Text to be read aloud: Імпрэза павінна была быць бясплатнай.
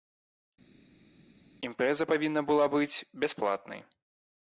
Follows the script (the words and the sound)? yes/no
yes